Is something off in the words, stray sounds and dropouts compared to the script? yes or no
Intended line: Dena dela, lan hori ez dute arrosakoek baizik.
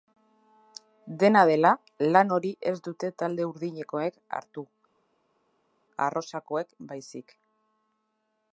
yes